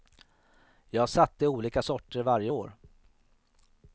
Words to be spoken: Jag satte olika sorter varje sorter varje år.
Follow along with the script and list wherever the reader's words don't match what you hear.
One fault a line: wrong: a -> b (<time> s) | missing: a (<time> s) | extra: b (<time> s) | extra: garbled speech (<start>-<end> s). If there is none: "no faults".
missing: sorter varje (2.5 s)